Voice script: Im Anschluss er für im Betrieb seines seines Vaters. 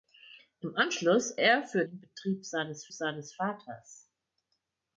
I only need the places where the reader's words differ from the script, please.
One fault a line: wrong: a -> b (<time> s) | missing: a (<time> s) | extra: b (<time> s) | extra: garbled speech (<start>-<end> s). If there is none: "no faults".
no faults